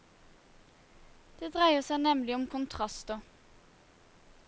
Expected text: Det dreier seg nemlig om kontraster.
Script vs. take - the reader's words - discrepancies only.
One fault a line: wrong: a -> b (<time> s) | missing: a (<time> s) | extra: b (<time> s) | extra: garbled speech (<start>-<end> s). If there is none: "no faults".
no faults